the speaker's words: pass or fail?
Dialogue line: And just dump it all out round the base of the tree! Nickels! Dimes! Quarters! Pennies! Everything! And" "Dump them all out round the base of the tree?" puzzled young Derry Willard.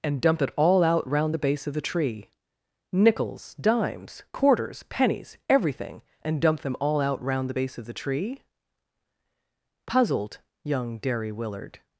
fail